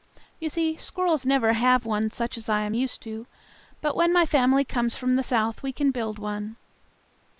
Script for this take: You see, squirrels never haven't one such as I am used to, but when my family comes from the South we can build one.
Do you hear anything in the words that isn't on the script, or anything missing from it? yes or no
yes